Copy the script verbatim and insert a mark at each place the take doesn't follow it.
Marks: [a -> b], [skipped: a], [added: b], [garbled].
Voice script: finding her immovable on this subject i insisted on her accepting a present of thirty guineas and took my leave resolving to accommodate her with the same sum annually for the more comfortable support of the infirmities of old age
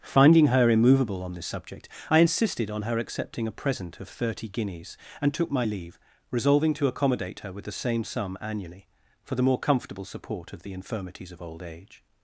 finding her immovable on this subject i insisted on her accepting a present of thirty guineas and took my leave resolving to accommodate her with the same sum annually for the more comfortable support of the infirmities of old age